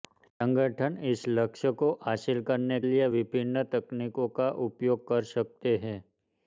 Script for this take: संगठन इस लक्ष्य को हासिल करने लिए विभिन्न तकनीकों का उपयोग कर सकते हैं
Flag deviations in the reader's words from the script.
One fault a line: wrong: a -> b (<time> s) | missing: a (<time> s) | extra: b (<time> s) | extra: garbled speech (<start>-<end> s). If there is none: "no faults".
no faults